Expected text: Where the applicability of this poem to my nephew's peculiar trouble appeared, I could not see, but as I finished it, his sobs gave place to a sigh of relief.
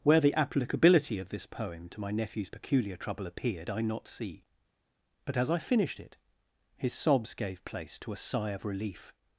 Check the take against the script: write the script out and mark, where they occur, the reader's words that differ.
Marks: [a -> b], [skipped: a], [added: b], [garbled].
Where the applicability of this poem to my nephew's peculiar trouble appeared, I [skipped: could] not see, but as I finished it, his sobs gave place to a sigh of relief.